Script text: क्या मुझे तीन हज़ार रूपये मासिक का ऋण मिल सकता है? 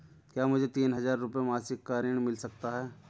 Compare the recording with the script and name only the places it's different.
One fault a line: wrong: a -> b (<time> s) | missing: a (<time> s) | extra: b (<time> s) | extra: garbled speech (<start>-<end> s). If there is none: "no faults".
no faults